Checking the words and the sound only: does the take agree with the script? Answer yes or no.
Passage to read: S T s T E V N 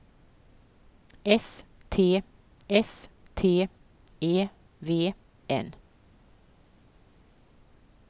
yes